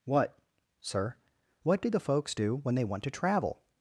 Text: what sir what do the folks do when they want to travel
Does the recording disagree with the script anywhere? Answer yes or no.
no